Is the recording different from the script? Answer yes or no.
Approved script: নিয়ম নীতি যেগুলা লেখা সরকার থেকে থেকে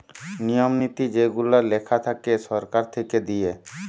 yes